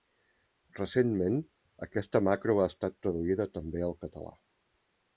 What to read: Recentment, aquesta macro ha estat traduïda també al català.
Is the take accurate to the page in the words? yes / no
yes